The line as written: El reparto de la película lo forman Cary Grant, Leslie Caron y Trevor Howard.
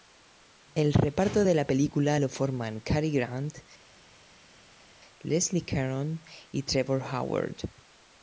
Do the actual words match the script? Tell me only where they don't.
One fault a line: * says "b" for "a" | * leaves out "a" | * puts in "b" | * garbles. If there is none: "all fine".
all fine